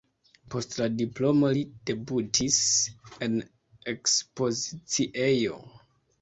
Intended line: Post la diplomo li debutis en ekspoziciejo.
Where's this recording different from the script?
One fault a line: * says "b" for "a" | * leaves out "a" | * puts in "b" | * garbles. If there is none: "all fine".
all fine